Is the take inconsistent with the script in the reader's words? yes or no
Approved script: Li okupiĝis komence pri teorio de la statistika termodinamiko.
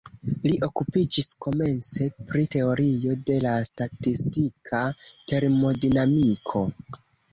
no